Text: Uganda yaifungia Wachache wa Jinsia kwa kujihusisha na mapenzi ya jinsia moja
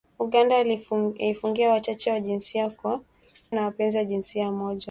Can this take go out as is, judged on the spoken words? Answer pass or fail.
fail